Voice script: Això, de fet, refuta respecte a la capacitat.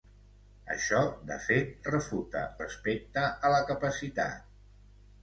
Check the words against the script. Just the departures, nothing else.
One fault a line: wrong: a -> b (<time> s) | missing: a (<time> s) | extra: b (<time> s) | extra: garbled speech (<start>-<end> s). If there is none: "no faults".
no faults